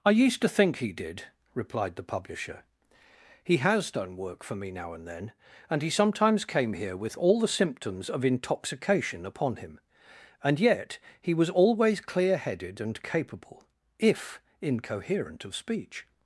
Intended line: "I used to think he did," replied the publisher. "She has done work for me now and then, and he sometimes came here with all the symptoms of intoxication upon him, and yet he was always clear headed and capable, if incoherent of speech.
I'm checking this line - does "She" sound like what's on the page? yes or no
no